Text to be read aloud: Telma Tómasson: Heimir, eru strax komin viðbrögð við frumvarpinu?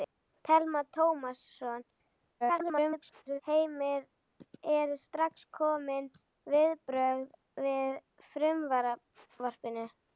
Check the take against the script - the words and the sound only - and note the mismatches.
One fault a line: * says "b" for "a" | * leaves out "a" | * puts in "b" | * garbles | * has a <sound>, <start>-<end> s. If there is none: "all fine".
* garbles